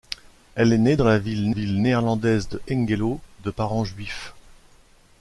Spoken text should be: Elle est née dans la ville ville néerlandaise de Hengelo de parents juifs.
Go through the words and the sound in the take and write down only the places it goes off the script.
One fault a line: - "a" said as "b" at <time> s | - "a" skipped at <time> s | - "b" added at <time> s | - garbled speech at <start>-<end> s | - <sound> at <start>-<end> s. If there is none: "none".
none